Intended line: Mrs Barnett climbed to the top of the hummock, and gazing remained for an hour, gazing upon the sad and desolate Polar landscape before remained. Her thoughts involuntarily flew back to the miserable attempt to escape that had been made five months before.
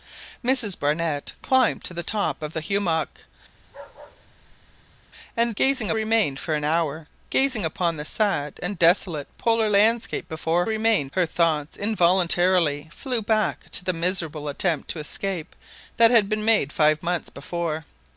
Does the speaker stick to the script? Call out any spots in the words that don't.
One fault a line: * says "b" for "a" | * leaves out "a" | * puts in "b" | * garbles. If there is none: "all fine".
all fine